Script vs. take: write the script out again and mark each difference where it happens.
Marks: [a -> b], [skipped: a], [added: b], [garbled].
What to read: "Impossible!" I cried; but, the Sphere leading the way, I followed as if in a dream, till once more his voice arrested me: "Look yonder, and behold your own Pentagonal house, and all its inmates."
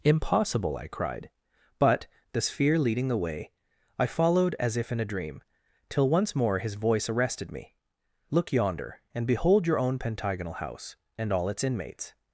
"Impossible!" I cried; but, the Sphere leading the way, I followed as if in a dream, till once more his voice arrested me: "Look yonder, and behold your own Pentagonal house, and all its inmates."